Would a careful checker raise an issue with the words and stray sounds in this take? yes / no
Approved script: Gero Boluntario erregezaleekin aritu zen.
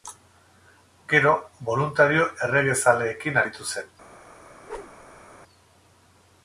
yes